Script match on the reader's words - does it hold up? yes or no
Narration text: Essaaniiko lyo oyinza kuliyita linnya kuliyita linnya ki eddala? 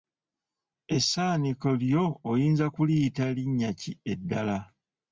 no